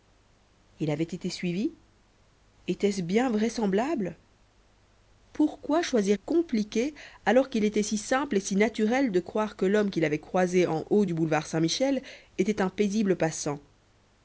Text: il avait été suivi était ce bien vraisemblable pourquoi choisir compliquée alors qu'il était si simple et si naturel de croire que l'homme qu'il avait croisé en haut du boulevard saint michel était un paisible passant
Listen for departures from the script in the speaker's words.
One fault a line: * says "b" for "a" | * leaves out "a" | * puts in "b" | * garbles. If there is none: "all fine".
all fine